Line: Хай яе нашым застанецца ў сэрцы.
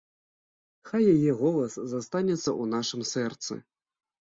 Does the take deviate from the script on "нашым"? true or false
true